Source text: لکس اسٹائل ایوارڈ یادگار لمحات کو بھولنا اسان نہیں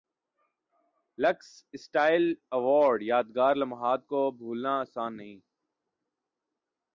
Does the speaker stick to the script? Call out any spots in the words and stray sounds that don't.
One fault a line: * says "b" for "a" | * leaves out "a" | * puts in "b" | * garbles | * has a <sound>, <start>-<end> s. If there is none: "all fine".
all fine